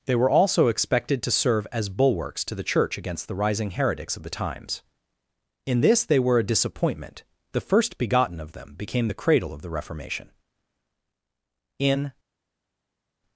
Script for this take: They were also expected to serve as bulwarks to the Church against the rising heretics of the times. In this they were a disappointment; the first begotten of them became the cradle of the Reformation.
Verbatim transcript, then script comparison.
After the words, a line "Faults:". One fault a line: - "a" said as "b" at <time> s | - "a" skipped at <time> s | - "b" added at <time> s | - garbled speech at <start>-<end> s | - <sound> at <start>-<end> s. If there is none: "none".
They were also expected to serve as bulwarks to the Church against the rising heretics of the times. In this they were a disappointment; the first begotten of them became the cradle of the Reformation. In
Faults:
- "In" added at 11.8 s